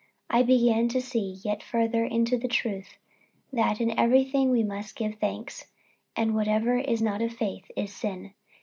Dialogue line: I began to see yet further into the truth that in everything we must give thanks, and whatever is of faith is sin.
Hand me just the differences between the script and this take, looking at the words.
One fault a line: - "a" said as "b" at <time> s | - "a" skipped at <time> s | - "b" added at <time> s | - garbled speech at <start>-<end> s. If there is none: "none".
- "not" added at 7.0 s